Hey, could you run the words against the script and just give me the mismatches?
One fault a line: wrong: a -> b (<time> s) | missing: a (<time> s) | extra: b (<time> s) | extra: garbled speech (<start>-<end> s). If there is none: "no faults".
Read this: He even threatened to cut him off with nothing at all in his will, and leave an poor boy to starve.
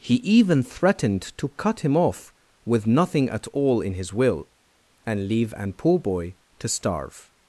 no faults